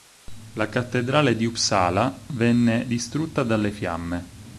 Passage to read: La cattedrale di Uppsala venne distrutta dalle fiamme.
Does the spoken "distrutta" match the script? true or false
true